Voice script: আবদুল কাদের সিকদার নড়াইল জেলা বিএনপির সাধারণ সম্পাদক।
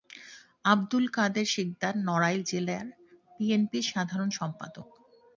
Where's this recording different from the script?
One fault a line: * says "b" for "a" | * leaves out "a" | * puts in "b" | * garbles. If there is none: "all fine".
all fine